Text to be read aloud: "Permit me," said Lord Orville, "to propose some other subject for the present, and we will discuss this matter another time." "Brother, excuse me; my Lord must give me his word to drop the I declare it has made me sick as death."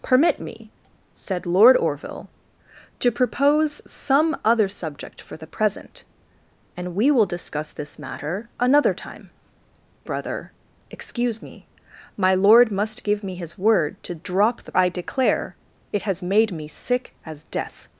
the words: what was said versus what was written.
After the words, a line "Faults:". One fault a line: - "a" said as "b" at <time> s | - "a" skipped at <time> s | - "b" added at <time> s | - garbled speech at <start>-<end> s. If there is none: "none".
"Permit me," said Lord Orville, "to propose some other subject for the present, and we will discuss this matter another time." "Brother, excuse me; my Lord must give me his word to drop the I declare it has made me sick as death."
Faults:
none